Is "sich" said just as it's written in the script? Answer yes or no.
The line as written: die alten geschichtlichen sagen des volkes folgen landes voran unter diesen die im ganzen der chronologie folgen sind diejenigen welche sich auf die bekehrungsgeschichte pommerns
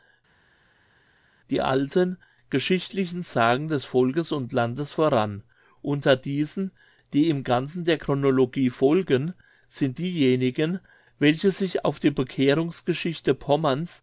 yes